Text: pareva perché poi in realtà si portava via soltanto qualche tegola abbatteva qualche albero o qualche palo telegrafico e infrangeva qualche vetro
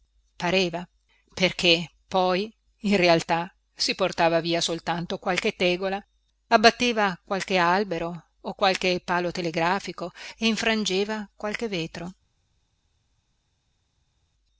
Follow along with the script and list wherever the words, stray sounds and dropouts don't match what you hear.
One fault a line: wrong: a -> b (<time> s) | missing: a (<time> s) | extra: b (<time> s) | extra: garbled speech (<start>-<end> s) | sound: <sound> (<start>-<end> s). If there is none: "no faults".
no faults